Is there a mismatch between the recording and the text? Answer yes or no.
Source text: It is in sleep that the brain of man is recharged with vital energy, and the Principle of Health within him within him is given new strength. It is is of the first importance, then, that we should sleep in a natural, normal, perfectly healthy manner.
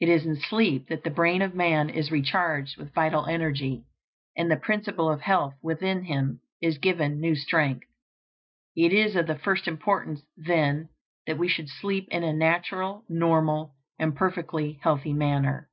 yes